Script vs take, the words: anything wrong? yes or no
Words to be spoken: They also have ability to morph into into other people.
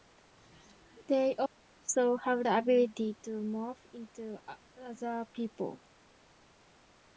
yes